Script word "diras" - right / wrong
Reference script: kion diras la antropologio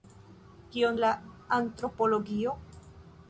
wrong